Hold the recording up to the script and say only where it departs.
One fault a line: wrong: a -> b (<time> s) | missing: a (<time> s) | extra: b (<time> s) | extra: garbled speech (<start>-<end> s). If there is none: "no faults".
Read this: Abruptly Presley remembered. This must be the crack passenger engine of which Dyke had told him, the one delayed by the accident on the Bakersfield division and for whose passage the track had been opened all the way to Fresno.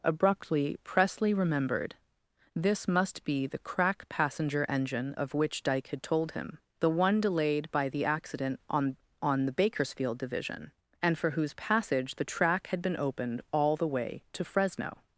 extra: on (9.2 s)